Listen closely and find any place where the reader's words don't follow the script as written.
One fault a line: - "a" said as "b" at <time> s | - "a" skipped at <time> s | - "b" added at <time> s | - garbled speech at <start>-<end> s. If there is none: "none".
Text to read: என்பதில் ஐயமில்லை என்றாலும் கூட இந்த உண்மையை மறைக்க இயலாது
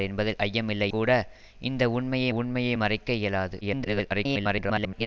- "என்றாலும்" skipped at 0.9 s
- "உண்மையை" added at 2.3 s
- garbled speech at 3.6-5.1 s